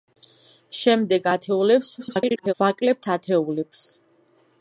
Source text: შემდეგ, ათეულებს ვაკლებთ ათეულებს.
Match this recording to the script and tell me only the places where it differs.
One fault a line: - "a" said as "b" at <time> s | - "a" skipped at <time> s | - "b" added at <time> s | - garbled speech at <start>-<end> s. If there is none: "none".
- garbled speech at 2.0-2.5 s